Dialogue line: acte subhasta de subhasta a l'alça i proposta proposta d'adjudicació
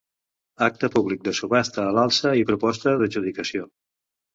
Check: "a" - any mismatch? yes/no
no